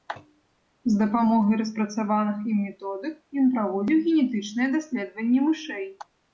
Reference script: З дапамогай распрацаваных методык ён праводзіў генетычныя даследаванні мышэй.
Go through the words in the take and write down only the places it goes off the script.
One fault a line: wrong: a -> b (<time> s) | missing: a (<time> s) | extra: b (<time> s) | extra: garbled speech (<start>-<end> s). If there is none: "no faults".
extra: ім (2.5 s)